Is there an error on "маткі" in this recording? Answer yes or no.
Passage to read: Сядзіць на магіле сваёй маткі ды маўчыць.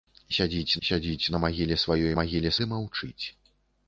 yes